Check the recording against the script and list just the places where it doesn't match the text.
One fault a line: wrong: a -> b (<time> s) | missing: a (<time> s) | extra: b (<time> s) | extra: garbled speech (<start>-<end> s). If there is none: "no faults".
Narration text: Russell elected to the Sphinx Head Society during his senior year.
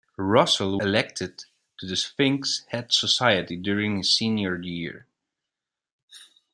no faults